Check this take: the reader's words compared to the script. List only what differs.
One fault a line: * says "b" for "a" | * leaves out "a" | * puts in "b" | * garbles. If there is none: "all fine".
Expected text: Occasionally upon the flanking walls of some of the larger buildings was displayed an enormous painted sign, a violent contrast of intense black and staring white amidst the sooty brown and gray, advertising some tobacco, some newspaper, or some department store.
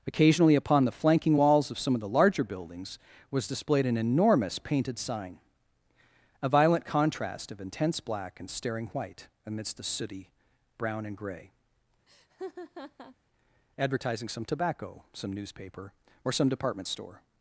all fine